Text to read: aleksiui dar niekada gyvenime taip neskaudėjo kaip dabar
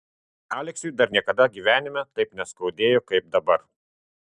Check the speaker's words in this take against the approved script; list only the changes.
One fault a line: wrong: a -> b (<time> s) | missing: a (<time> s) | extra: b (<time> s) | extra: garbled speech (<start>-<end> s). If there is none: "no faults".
no faults